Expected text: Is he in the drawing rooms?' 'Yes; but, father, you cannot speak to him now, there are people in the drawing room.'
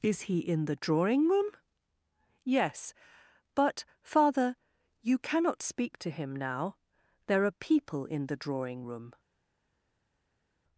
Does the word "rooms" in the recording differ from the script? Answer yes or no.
yes